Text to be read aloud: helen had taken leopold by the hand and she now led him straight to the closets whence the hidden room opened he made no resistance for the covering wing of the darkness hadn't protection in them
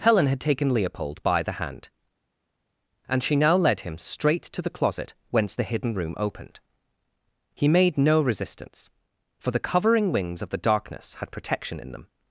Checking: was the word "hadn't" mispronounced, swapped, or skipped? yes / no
yes